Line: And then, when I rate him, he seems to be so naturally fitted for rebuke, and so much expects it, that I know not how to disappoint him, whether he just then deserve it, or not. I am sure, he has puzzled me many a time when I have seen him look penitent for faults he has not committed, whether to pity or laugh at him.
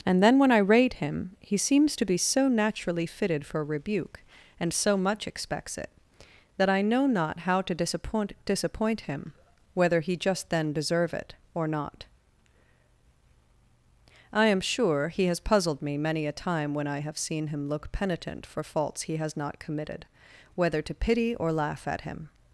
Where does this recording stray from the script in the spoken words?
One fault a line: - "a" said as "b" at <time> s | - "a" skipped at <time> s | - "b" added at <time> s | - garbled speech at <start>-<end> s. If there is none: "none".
- "disappoint" added at 8.5 s